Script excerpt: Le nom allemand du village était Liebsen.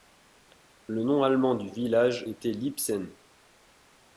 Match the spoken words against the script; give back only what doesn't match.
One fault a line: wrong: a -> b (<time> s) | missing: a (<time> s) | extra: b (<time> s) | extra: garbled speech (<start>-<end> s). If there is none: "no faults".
no faults